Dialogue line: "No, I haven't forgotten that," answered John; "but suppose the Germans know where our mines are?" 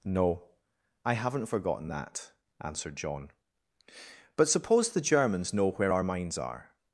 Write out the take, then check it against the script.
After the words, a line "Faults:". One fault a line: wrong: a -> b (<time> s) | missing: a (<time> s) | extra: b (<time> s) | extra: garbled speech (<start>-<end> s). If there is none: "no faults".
"No, I haven't forgotten that," answered John; "but suppose the Germans know where our mines are?"
Faults:
no faults